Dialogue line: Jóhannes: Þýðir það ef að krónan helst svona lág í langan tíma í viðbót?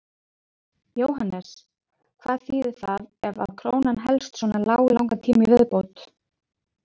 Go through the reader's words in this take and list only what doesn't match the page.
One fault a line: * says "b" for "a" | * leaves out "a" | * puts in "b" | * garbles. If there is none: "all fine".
* puts in "Hvað"